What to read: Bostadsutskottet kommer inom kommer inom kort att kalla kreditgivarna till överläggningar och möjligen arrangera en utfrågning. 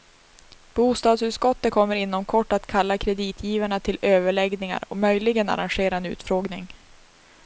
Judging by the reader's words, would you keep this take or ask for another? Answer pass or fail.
fail